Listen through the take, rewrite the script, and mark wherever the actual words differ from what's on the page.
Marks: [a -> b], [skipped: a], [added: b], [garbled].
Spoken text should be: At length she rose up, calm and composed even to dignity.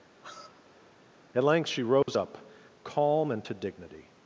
At length she rose up, calm and [skipped: composed even] to dignity.